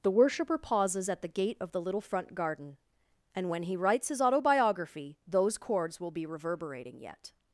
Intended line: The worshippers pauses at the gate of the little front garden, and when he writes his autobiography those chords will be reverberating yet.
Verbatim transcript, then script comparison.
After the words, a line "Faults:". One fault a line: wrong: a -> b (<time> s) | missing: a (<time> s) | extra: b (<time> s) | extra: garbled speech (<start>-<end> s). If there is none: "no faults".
The worshipper pauses at the gate of the little front garden, and when he writes his autobiography those chords will be reverberating yet.
Faults:
wrong: worshippers -> worshipper (0.1 s)